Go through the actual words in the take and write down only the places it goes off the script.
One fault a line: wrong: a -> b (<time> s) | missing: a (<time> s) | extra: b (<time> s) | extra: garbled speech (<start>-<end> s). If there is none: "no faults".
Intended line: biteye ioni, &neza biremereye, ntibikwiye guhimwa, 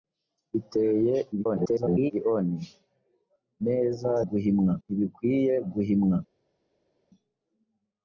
extra: garbled speech (1.3-2.1 s)
wrong: biremereye -> guhimwa (4.3 s)